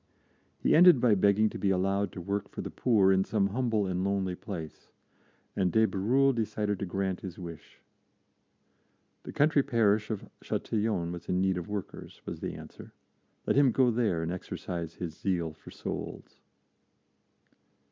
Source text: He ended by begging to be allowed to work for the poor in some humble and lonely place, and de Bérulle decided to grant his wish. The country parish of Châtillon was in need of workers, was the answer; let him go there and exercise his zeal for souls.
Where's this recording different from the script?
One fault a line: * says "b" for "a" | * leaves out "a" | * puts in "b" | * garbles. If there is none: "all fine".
all fine